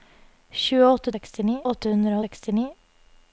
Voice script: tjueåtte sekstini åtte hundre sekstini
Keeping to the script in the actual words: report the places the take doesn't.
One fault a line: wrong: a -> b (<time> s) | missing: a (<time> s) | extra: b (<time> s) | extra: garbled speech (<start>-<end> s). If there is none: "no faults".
no faults